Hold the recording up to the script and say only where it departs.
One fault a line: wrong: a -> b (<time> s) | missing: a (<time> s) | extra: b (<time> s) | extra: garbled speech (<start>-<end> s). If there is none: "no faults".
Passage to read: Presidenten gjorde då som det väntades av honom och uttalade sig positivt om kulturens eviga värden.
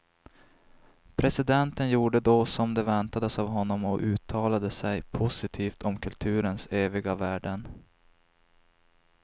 no faults